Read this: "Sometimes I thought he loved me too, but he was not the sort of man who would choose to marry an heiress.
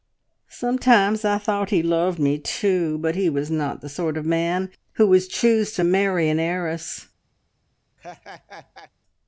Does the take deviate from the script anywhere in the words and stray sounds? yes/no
yes